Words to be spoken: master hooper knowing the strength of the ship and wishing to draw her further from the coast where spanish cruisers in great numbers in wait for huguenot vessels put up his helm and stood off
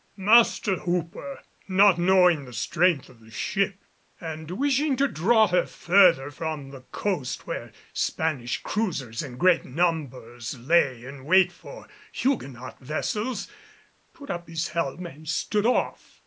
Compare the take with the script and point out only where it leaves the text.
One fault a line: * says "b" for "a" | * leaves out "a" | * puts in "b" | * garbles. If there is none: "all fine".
* puts in "not"
* puts in "lay"